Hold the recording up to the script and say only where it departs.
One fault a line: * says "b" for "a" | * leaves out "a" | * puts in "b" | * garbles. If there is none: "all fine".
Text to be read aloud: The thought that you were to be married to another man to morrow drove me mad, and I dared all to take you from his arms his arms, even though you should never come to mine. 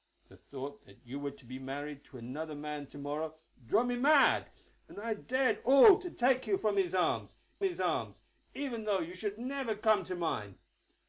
all fine